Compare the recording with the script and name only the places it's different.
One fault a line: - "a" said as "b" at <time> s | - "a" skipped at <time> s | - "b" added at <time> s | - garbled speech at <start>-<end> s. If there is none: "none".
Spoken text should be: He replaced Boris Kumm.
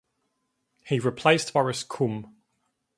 none